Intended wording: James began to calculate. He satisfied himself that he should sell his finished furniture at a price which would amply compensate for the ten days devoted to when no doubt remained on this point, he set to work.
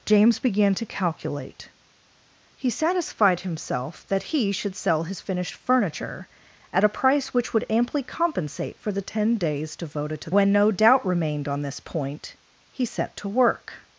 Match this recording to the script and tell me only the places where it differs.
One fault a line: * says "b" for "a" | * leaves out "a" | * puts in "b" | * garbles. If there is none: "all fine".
all fine